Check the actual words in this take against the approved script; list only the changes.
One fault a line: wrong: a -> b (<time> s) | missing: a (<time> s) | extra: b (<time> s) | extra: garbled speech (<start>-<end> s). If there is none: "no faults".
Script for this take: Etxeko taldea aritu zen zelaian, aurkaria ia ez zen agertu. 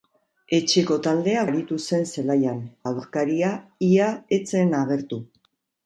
no faults